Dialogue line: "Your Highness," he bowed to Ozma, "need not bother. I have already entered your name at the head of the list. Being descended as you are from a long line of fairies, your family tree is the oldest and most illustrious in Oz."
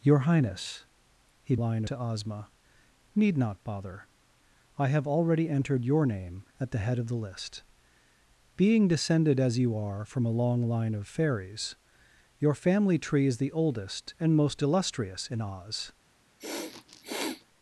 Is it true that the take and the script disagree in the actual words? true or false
true